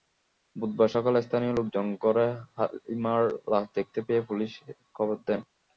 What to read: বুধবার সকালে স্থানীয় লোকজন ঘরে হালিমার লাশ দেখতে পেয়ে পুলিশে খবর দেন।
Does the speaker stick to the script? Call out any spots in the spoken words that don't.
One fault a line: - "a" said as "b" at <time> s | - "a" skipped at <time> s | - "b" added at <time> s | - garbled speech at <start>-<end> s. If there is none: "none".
none